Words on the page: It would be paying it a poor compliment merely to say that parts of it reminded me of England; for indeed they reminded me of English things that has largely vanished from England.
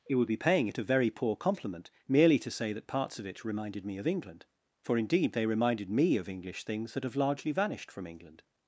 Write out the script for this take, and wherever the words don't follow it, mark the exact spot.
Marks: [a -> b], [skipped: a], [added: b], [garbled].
It would be paying it a [added: very] poor compliment merely to say that parts of it reminded me of England; for indeed they reminded me of English things that [has -> have] largely vanished from England.